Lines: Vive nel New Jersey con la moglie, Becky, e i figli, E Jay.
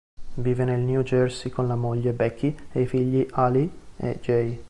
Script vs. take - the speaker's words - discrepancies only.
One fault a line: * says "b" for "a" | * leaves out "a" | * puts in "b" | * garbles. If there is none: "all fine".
* puts in "Ali"